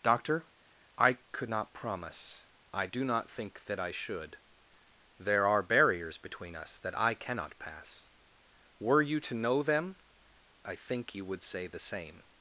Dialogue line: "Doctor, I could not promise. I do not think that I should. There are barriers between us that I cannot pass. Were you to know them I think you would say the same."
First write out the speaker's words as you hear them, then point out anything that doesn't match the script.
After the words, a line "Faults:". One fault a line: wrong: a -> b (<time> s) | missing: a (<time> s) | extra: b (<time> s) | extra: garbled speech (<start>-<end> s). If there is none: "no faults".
"Doctor, I could not promise. I do not think that I should. There are barriers between us that I cannot pass. Were you to know them I think you would say the same."
Faults:
no faults